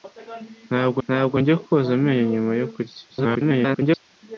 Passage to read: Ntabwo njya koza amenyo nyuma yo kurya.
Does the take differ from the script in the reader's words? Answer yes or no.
yes